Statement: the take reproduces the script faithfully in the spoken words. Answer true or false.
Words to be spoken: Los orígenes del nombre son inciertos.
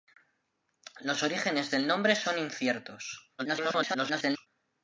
false